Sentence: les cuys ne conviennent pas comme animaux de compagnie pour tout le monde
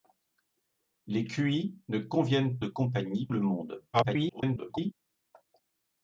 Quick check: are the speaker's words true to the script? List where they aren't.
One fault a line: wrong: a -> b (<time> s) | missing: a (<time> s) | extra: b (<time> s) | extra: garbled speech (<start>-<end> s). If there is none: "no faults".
missing: pas comme animaux (2.6 s)
missing: pour tout (3.3 s)
extra: garbled speech (3.9-4.9 s)